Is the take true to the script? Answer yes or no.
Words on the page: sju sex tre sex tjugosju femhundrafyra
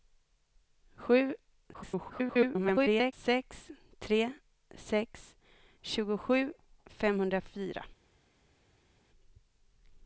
no